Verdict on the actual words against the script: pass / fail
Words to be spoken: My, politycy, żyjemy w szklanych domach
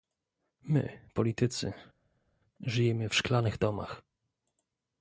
pass